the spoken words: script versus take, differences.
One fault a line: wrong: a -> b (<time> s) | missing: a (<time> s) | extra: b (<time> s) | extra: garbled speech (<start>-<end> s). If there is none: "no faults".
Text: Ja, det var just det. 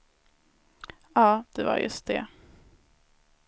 no faults